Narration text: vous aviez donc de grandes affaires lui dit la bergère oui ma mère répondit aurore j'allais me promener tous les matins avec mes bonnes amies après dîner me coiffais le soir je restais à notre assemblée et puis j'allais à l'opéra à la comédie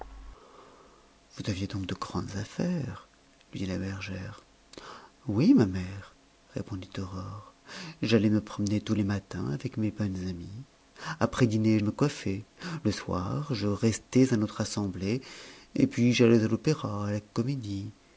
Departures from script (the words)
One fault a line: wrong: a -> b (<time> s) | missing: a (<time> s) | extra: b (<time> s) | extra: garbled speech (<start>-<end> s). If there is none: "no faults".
no faults